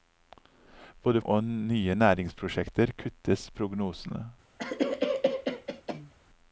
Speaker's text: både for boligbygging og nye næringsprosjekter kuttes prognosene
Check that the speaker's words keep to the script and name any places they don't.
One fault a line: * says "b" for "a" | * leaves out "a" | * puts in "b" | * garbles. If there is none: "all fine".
* leaves out "for boligbygging"